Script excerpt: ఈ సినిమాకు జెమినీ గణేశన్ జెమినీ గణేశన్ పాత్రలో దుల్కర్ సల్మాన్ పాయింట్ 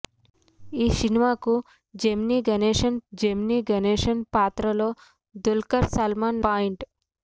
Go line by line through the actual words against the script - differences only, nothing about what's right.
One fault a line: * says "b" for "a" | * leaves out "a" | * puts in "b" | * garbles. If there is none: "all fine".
all fine